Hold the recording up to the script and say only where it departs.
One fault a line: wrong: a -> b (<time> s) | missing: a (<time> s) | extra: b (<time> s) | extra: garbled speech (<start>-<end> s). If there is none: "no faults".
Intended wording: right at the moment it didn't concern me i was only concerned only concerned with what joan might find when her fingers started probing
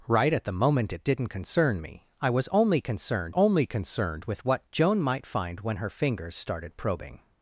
no faults